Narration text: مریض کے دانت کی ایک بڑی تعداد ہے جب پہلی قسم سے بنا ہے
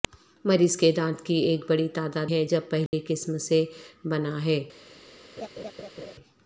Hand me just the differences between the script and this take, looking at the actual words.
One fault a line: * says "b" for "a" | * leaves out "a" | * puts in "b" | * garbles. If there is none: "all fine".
all fine